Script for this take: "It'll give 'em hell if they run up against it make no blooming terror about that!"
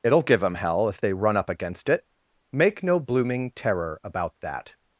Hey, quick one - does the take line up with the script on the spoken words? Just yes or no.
yes